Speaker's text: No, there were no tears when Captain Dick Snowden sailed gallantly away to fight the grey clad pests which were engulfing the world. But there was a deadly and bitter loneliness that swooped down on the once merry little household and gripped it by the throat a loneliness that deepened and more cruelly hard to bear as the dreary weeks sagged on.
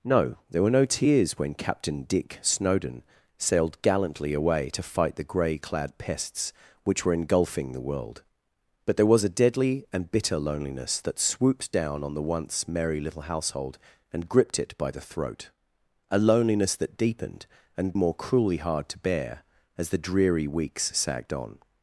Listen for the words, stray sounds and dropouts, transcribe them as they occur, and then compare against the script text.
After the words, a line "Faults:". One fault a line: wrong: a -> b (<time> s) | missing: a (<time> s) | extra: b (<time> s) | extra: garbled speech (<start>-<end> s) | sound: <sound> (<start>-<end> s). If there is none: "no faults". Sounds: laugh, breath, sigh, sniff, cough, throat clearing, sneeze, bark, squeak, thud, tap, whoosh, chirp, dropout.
No, there were no tears when Captain Dick Snowden sailed gallantly away to fight the grey clad pests which were engulfing the world. But there was a deadly and bitter loneliness that swooped down on the once merry little household and gripped it by the throat a loneliness that deepened and more cruelly hard to bear as the dreary weeks sagged on.
Faults:
no faults